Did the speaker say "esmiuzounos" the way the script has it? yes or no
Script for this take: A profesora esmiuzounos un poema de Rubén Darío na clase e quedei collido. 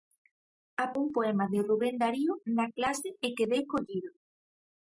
no